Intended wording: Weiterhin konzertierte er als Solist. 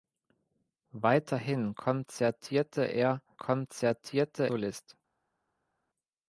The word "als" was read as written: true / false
false